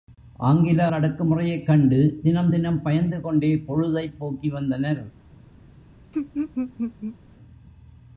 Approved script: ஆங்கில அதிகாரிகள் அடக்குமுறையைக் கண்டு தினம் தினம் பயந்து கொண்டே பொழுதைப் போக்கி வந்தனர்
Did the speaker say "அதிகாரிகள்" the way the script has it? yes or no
no